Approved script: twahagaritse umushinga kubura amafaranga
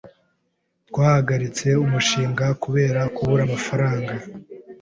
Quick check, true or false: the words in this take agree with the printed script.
false